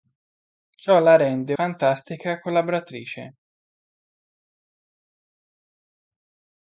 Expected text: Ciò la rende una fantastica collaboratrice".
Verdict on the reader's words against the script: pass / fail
fail